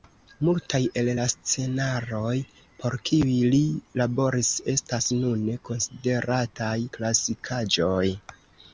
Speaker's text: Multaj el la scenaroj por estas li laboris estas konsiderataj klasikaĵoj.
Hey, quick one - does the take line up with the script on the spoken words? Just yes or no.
no